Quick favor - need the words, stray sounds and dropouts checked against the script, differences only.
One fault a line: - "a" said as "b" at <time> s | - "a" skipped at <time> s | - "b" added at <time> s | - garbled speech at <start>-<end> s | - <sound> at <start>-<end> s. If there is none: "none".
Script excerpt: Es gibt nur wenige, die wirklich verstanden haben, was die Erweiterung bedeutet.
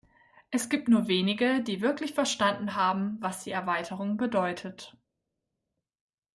none